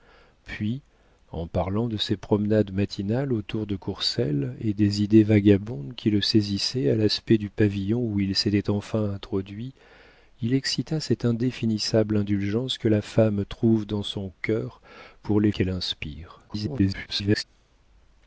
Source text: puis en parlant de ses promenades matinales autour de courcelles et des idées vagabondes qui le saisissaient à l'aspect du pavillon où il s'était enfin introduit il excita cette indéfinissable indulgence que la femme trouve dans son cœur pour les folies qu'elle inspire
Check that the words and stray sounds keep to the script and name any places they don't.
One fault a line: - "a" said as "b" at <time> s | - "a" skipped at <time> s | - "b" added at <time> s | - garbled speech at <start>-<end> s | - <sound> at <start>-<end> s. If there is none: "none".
- "folies" skipped at 15.5 s
- garbled speech at 16.5-17.4 s